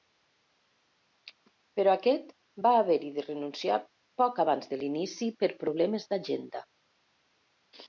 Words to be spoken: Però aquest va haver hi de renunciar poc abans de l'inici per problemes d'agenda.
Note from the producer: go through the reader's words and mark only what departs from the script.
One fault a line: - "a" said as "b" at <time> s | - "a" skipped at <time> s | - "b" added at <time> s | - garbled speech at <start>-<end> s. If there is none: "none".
none